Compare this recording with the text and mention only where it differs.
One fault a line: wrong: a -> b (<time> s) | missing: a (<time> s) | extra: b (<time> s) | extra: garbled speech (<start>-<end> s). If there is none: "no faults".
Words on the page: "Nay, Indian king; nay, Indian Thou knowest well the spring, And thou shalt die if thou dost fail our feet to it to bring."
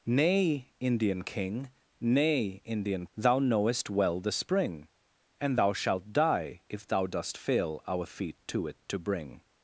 no faults